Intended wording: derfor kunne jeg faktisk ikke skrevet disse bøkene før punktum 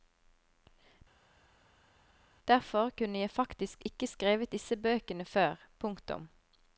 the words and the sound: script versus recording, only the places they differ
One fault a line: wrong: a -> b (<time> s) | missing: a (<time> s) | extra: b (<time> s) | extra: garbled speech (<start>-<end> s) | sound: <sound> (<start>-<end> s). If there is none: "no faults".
no faults